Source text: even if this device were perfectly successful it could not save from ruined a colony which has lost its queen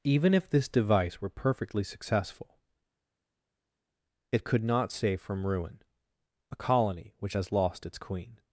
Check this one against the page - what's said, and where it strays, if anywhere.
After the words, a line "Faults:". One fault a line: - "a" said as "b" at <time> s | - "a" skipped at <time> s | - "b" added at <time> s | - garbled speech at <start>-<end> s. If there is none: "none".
even if this device were perfectly successful it could not save from ruin a colony which has lost its queen
Faults:
- "ruined" said as "ruin" at 5.5 s